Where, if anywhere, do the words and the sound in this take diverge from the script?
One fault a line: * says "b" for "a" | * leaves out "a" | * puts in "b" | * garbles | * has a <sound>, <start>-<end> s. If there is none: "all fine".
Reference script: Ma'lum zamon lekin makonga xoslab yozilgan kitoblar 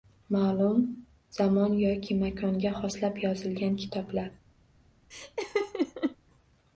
* says "yoki" for "lekin"
* has a laugh, 5.1-6.2 s